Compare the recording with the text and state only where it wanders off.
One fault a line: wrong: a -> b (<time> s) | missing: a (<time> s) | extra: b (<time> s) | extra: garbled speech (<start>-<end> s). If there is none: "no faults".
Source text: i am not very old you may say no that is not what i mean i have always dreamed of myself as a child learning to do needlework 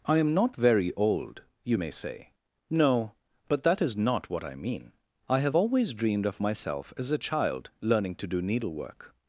extra: but (3.5 s)